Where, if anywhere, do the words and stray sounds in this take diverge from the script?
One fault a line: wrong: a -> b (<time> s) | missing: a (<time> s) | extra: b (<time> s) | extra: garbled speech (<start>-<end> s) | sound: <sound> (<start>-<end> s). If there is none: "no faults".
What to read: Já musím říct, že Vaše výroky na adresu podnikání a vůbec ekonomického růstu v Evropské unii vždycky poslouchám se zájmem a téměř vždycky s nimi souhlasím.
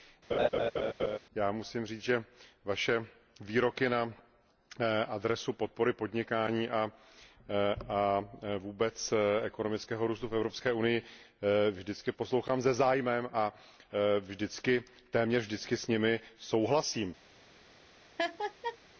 sound: laugh (0.3-1.2 s)
extra: podpory (5.5 s)
sound: laugh (18.2-18.8 s)